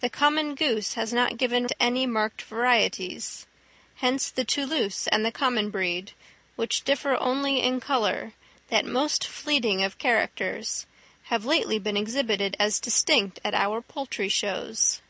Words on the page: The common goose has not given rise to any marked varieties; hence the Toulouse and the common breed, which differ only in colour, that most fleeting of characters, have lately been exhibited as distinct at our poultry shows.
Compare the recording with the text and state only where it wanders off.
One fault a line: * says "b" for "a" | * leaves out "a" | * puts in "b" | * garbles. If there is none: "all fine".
* leaves out "rise"